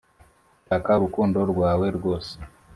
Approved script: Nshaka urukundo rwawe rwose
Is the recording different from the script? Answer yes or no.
no